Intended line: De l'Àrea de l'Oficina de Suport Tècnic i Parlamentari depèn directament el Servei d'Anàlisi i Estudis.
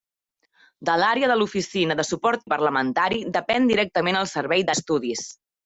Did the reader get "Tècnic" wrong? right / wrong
wrong